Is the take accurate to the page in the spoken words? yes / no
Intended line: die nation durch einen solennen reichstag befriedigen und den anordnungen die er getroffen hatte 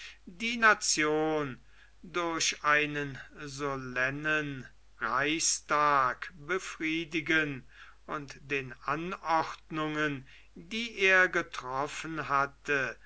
yes